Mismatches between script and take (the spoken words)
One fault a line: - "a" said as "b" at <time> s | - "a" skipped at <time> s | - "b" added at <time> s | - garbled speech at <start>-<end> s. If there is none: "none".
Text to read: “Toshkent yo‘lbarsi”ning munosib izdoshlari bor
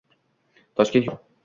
- "yo‘lbarsi”ning munosib izdoshlari" skipped at 1.1 s